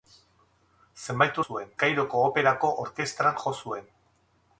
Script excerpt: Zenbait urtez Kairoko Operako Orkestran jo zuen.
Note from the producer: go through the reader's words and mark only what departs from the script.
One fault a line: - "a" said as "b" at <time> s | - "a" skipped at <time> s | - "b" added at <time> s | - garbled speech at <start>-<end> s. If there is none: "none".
- "urtez" said as "zuen" at 1.4 s